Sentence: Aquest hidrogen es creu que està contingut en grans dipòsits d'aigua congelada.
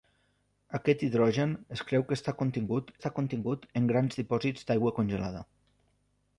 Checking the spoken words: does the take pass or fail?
fail